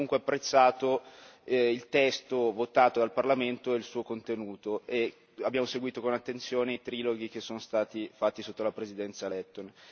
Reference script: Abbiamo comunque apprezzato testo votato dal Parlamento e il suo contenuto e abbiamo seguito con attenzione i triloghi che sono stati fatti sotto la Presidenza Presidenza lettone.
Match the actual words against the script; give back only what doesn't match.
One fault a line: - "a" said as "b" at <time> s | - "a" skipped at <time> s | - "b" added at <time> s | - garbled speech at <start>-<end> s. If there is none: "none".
- "il" added at 1.4 s
- "Presidenza" skipped at 9.3 s